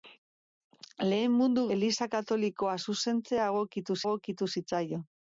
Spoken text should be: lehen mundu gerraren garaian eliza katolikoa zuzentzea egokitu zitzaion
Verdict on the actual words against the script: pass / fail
fail